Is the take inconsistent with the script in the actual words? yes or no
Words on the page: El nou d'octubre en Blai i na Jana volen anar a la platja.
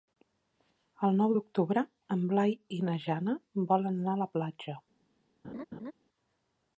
no